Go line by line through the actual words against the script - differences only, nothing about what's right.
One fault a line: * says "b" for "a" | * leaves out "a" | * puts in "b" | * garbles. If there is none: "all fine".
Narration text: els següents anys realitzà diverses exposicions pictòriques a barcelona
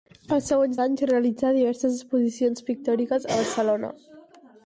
all fine